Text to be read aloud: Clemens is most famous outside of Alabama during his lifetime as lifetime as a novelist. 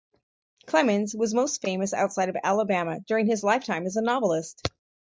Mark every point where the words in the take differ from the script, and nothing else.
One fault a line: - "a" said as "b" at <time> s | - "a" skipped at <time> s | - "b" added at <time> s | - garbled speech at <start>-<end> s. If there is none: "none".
- "is" said as "was" at 1.1 s
- "lifetime as" skipped at 4.0 s